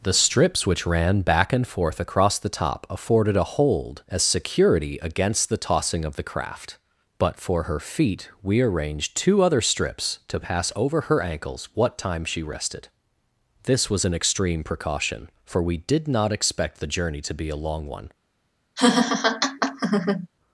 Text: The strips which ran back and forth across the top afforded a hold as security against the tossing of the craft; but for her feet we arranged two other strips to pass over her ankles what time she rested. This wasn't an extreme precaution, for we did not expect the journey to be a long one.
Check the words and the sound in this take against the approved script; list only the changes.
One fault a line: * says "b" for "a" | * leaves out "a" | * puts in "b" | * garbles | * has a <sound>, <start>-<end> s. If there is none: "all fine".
* says "was" for "wasn't"
* has a laugh, 18.8-20.3 s